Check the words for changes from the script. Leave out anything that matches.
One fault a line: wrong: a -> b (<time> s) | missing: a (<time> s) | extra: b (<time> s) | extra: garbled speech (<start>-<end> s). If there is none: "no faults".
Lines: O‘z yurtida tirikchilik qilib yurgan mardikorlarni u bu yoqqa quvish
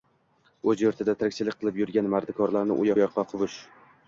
no faults